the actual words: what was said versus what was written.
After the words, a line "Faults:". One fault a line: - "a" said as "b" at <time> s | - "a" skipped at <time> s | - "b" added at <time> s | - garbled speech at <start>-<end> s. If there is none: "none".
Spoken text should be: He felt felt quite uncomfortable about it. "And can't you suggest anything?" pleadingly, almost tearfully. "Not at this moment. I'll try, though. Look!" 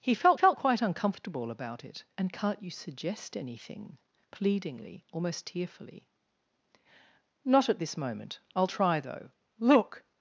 He felt felt quite uncomfortable about it. "And can't you suggest anything?" pleadingly, almost tearfully. "Not at this moment. I'll try, though. Look!"
Faults:
none